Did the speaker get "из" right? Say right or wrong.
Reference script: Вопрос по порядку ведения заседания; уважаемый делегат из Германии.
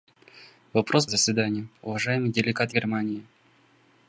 wrong